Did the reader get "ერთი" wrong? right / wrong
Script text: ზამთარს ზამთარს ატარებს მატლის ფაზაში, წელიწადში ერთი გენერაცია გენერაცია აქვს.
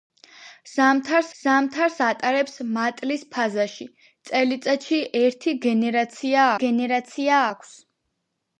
right